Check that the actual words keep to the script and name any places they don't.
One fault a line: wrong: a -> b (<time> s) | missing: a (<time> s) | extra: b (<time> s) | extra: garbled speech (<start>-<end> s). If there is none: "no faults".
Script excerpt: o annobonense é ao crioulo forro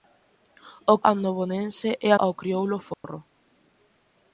no faults